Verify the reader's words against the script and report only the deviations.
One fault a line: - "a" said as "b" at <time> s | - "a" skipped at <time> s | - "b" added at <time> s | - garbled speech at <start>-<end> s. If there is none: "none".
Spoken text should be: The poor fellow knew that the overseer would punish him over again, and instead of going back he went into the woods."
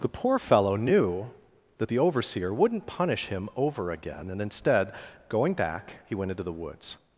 - "would" said as "wouldn't" at 2.5 s
- "of" skipped at 4.9 s